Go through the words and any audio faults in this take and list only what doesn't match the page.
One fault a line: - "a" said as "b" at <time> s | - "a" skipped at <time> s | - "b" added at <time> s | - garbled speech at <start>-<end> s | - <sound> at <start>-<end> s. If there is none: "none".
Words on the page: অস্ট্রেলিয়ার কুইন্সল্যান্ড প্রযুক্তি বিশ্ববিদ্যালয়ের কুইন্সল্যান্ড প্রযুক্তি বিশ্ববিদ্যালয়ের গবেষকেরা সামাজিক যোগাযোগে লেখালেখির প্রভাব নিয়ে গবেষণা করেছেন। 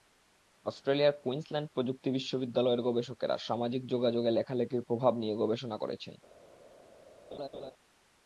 - "কুইন্সল্যান্ড প্রযুক্তি বিশ্ববিদ্যালয়ের" skipped at 2.8 s
- laugh at 7.3-7.7 s